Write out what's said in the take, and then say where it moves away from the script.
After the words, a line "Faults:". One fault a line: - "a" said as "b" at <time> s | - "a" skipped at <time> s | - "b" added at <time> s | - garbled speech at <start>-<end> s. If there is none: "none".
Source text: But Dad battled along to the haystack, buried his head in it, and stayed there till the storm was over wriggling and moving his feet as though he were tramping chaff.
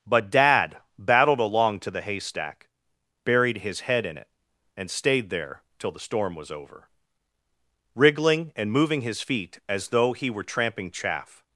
But Dad battled along to the haystack, buried his head in it, and stayed there till the storm was over wriggling and moving his feet as though he were tramping chaff.
Faults:
none